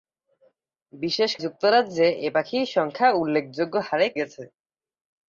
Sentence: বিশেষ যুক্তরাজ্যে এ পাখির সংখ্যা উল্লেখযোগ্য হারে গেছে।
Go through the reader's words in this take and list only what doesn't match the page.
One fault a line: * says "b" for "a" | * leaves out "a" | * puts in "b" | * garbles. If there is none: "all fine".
all fine